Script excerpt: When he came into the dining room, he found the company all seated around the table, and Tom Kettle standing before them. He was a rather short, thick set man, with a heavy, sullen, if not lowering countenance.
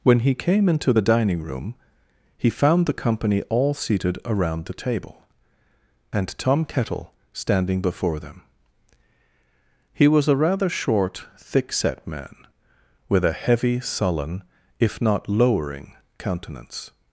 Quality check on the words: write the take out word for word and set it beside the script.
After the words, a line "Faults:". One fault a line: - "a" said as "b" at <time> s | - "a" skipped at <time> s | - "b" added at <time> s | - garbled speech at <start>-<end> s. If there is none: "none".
When he came into the dining room, he found the company all seated around the table, and Tom Kettle standing before them. He was a rather short, thick set man, with a heavy, sullen, if not lowering countenance.
Faults:
none